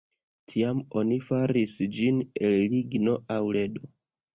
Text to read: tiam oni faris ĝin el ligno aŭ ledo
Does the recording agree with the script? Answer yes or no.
yes